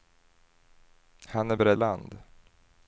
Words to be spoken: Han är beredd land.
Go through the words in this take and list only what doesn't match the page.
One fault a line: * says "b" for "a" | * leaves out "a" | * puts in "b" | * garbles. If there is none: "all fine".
all fine